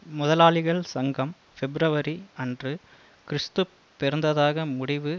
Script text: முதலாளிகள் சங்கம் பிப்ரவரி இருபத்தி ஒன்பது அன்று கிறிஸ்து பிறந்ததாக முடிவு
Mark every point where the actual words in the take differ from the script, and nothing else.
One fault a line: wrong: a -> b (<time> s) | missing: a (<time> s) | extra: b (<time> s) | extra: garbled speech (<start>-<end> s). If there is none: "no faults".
missing: இருபத்தி ஒன்பது (2.1 s)